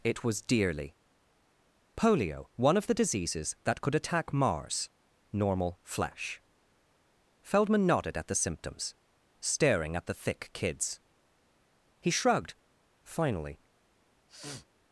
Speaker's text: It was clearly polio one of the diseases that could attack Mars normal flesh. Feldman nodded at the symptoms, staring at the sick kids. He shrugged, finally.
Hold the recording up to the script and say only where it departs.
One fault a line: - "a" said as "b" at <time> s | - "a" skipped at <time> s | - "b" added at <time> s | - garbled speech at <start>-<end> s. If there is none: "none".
- "clearly" said as "dearly" at 0.4 s
- "sick" said as "thick" at 10.1 s